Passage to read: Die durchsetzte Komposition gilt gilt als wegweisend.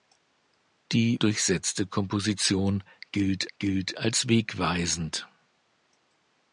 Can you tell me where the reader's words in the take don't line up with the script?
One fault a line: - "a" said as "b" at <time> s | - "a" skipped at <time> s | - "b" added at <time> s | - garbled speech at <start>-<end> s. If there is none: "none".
none